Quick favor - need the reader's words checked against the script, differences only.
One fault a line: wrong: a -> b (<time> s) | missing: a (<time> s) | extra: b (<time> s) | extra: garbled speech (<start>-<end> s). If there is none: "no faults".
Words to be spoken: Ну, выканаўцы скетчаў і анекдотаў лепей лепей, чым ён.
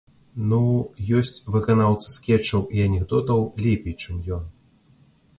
extra: ёсць (1.2 s)
missing: лепей (3.9 s)